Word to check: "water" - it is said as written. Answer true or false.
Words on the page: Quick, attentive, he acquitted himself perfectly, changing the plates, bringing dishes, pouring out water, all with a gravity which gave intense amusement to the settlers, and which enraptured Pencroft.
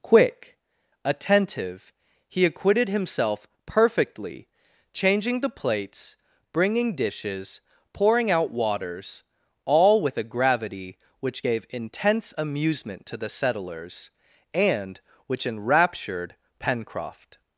false